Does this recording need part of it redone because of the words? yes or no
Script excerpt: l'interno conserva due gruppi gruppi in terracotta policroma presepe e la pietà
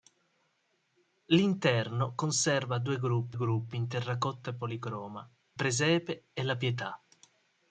no